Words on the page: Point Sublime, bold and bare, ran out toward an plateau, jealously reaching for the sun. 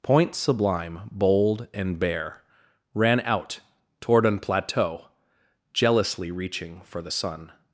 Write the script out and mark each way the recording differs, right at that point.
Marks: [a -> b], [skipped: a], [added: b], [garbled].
Point Sublime, bold and bare, ran out toward an plateau, jealously reaching for the sun.